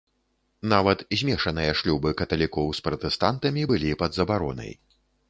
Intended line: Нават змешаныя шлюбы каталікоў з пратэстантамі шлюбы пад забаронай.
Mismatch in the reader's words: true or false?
true